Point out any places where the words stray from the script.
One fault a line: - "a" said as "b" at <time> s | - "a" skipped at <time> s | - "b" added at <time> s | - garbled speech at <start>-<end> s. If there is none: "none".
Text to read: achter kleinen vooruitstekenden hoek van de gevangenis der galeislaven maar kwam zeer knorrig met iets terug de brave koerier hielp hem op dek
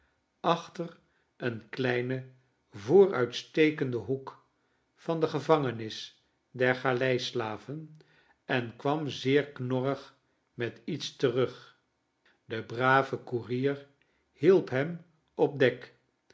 - "een" added at 1.4 s
- "maar" said as "en" at 8.4 s